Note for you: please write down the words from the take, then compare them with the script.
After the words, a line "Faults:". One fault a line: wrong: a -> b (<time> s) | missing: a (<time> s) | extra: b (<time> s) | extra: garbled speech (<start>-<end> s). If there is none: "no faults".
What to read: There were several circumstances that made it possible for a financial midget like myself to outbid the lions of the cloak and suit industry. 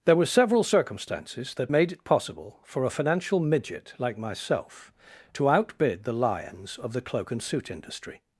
There were several circumstances that made it possible for a financial midget like myself to outbid the lions of the cloak and suit industry.
Faults:
no faults